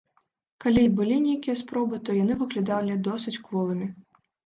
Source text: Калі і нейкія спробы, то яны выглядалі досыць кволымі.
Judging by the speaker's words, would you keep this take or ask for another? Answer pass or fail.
fail